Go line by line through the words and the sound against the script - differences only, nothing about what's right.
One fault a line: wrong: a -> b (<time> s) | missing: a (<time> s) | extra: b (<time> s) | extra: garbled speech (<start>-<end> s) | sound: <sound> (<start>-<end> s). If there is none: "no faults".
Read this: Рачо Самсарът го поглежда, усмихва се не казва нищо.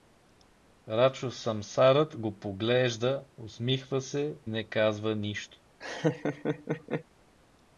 sound: laugh (5.8-7.0 s)